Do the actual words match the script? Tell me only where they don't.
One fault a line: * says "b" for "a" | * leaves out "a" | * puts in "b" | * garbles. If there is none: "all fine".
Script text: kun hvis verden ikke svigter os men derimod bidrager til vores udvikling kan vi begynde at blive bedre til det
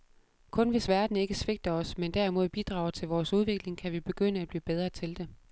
all fine